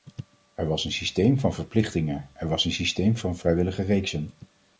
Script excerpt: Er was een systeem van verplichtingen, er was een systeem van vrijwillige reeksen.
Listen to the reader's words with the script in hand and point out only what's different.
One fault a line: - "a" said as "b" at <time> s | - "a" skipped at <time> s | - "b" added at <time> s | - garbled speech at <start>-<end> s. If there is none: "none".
none